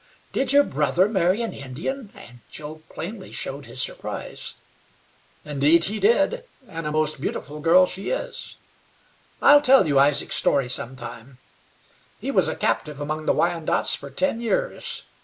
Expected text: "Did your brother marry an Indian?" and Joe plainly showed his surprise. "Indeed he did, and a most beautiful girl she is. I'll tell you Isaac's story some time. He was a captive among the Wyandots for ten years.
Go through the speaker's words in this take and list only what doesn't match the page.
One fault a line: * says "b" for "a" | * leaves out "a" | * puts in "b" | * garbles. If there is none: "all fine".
all fine